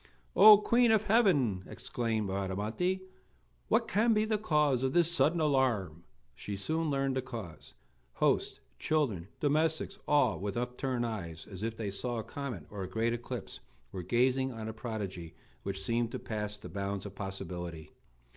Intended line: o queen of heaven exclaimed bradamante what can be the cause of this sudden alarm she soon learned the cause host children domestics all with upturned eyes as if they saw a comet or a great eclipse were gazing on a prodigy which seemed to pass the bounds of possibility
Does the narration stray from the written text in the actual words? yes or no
no